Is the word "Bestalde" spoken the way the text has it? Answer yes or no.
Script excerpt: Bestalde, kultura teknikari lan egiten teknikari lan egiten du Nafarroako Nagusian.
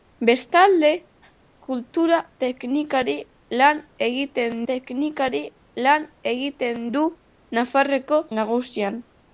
yes